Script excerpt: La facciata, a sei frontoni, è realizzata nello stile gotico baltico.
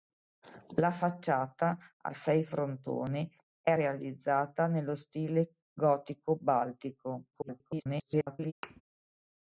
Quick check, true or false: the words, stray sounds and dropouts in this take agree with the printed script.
false